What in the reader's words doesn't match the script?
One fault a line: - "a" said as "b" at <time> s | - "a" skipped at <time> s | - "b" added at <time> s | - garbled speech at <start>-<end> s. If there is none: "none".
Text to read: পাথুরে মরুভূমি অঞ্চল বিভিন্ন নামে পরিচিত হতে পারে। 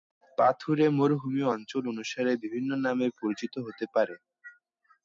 - "অনুসারে" added at 1.9 s